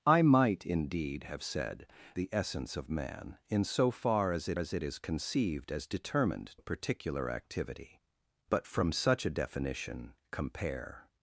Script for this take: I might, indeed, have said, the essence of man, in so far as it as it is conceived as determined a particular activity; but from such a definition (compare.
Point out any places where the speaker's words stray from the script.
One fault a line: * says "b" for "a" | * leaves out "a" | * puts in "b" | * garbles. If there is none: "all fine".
all fine